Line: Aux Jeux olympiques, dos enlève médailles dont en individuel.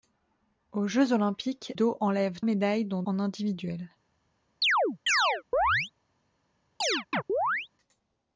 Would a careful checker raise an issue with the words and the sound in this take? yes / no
yes